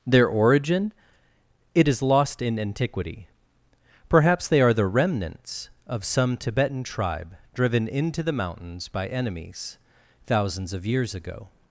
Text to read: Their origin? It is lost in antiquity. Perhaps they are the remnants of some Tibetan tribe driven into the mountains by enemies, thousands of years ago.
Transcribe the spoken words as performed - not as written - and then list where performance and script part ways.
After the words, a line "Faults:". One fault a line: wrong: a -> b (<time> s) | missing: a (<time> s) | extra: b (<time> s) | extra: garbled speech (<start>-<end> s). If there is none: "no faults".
Their origin? It is lost in antiquity. Perhaps they are the remnants of some Tibetan tribe driven into the mountains by enemies, thousands of years ago.
Faults:
no faults